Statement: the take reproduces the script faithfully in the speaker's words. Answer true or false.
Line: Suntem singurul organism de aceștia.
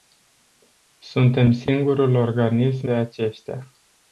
true